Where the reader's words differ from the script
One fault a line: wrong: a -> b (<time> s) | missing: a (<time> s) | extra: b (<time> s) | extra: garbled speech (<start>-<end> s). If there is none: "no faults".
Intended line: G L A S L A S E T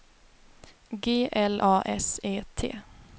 missing: L A S (2.2 s)